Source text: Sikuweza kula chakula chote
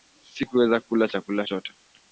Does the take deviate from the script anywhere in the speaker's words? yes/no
no